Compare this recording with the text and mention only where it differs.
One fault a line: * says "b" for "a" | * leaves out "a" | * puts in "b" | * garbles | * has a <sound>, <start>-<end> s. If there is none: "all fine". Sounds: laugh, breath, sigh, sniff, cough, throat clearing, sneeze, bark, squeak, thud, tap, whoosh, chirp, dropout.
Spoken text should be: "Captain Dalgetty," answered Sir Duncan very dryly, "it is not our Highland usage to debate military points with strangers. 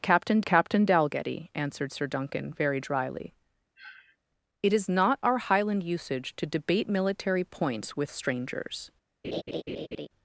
* puts in "captain"
* has a sniff, 3.8-4.2 s
* has a laugh, 9.2-10.1 s